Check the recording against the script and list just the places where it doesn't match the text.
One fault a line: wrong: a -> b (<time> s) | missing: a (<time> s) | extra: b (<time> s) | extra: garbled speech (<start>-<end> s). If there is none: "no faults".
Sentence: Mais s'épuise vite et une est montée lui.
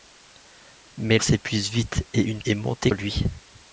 no faults